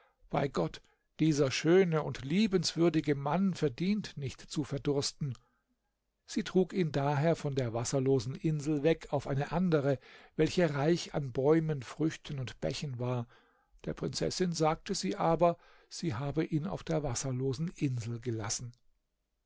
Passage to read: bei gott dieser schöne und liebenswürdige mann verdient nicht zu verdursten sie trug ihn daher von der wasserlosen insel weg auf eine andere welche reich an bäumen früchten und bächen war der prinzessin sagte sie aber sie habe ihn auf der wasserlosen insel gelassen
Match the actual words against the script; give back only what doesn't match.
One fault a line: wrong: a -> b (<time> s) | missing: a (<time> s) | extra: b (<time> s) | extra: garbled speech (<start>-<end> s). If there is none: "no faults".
no faults